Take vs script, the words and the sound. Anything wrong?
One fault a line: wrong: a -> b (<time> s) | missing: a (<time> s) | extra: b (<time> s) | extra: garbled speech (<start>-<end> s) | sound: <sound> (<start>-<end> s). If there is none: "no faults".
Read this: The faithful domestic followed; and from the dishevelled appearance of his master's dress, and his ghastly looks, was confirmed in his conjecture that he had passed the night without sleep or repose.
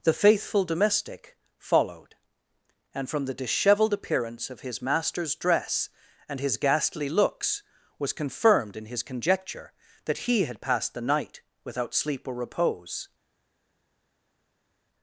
no faults